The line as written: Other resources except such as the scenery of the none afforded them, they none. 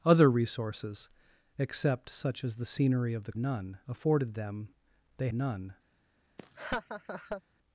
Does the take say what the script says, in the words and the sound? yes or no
no